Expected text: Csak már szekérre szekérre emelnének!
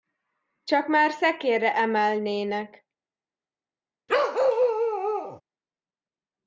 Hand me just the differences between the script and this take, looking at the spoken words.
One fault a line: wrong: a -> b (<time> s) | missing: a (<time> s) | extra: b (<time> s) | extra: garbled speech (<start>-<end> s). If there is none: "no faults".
missing: szekérre (1.7 s)